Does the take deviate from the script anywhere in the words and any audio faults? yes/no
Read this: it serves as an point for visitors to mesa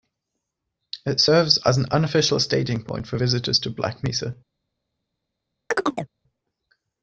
yes